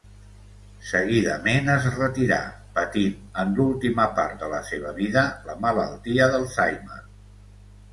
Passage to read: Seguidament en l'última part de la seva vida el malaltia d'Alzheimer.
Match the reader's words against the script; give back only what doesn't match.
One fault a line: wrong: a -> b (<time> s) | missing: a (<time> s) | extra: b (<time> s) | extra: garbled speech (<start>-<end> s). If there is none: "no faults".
extra: es retirà patint (1.7 s)
wrong: el -> la (5.5 s)